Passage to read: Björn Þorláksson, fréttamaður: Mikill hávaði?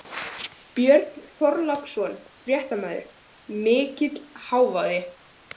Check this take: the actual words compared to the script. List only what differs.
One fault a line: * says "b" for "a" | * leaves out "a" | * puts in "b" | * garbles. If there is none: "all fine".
all fine